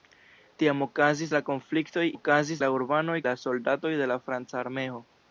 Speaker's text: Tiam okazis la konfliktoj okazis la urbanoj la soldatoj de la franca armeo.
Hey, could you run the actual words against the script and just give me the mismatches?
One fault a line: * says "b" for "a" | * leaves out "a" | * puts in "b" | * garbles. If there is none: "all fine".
all fine